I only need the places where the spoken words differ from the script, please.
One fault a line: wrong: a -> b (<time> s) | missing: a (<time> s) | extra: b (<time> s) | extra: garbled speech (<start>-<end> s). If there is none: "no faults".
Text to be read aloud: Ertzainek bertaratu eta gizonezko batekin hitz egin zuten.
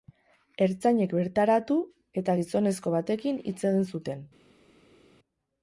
no faults